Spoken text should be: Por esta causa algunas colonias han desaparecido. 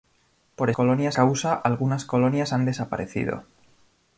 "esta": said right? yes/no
no